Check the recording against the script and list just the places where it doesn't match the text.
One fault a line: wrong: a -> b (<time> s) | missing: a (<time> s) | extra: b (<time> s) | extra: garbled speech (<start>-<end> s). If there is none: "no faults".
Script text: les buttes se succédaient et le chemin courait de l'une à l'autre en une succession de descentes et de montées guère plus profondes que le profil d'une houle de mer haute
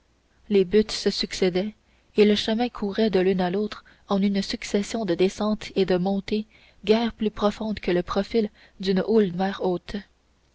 missing: de (9.3 s)